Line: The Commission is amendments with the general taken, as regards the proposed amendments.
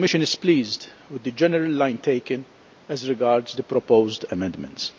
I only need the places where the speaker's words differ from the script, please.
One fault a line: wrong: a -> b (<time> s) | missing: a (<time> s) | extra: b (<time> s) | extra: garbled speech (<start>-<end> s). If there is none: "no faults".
wrong: amendments -> pleased (0.4 s)
extra: line (1.7 s)